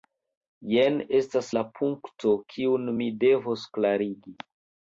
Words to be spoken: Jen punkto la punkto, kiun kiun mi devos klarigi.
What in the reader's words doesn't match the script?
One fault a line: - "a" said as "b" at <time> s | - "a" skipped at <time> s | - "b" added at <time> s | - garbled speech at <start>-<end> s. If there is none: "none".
- "punkto" said as "estas" at 1.2 s
- "kiun" skipped at 2.9 s